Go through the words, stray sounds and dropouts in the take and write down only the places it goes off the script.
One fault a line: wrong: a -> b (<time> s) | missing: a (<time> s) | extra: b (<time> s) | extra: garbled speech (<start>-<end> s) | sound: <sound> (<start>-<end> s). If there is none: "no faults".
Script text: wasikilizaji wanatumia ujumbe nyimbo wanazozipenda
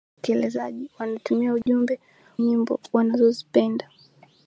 sound: dropout (1.6-1.7 s)